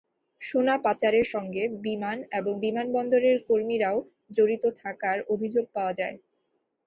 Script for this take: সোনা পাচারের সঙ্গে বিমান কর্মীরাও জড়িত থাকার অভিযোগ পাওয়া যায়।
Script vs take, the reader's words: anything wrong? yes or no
yes